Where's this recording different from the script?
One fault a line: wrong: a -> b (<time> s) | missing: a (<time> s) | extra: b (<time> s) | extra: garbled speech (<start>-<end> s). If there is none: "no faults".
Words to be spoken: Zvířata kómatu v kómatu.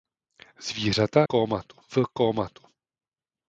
no faults